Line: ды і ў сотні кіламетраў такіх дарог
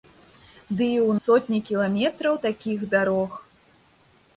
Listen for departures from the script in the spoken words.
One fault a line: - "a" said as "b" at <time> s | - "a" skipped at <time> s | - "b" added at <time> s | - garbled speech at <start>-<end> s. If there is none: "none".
none